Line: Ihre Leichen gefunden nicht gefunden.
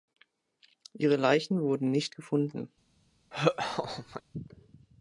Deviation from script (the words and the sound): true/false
true